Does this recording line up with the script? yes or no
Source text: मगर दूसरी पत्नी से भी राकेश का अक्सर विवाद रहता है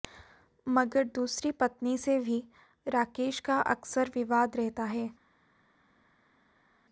yes